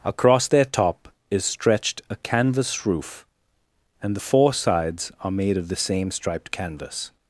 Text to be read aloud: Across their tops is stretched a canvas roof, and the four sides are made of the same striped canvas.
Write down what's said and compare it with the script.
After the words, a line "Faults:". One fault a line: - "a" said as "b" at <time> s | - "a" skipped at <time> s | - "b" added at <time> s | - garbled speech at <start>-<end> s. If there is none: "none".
Across their top is stretched a canvas roof, and the four sides are made of the same striped canvas.
Faults:
- "tops" said as "top" at 0.6 s